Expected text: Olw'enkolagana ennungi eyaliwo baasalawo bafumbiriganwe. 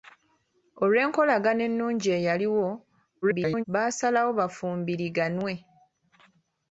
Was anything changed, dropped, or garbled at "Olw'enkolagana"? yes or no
no